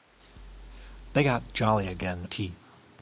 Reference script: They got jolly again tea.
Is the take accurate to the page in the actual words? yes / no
yes